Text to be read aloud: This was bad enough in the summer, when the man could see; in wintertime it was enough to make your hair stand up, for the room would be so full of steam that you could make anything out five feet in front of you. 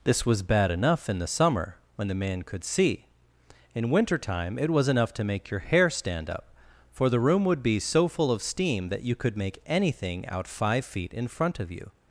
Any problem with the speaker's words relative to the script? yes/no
no